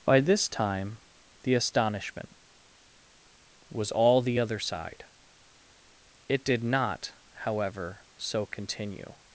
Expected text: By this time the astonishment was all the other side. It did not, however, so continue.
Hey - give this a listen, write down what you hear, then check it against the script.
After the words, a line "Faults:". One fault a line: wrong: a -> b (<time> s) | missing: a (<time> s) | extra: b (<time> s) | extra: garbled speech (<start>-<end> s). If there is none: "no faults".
By this time the astonishment was all the other side. It did not, however, so continue.
Faults:
no faults